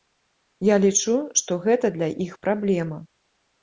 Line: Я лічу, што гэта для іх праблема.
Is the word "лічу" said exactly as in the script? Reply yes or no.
yes